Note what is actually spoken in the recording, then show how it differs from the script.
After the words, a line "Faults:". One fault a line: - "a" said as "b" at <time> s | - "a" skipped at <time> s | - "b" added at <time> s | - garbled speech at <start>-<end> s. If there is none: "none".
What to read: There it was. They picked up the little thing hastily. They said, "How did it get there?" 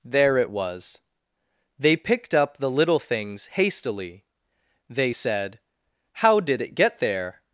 There it was. They picked up the little things hastily. They said, "How did it get there?"
Faults:
- "thing" said as "things" at 3.0 s